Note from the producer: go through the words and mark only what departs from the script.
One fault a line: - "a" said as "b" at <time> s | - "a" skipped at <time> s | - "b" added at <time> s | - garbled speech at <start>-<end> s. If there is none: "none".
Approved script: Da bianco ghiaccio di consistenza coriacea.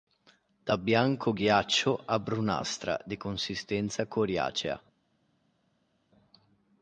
- "a brunastra" added at 2.1 s